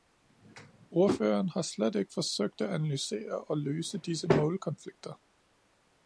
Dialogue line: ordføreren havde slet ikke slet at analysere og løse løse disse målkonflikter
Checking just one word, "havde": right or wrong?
wrong